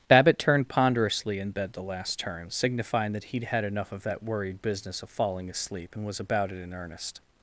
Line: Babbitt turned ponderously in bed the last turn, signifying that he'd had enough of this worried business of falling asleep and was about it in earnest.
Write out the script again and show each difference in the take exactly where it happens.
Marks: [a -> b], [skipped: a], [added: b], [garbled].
Babbitt turned ponderously in bed the last turn, signifying that he'd had enough of [this -> that] worried business of falling asleep and was about it in earnest.